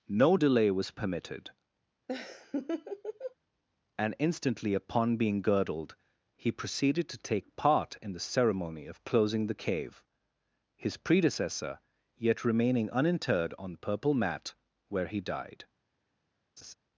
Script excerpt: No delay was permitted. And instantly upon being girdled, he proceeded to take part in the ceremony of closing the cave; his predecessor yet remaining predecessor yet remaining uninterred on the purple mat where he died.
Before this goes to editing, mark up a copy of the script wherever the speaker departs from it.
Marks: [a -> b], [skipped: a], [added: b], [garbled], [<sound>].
No delay was permitted. [laugh] And instantly upon being girdled, he proceeded to take part in the ceremony of closing the cave; his predecessor yet remaining [skipped: predecessor yet remaining] uninterred on the purple mat where he died. [laugh]